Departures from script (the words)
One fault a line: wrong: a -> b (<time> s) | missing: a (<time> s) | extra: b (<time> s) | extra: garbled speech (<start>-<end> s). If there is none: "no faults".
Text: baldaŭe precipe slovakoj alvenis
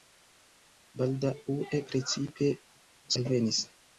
missing: slovakoj (2.5 s)